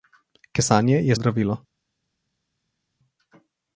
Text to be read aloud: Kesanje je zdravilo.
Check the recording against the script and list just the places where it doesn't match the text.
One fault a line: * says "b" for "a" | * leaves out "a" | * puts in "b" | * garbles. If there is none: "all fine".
all fine